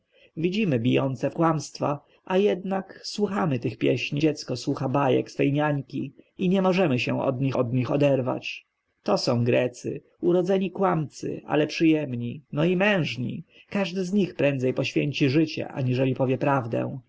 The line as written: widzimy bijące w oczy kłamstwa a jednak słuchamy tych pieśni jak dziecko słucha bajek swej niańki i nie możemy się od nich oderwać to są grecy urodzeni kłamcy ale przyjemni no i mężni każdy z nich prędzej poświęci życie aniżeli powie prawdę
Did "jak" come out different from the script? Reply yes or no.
yes